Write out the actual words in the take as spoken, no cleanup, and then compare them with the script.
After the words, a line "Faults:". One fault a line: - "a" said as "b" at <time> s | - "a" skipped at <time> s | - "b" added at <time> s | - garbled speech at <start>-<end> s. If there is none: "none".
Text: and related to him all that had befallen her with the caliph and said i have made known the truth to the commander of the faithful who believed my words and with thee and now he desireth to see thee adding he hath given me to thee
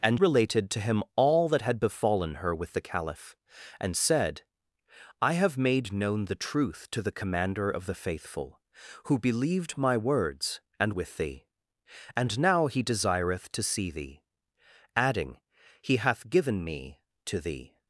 and related to him all that had befallen her with the caliph and said i have made known the truth to the commander of the faithful who believed my words and with thee and now he desireth to see thee adding he hath given me to thee
Faults:
none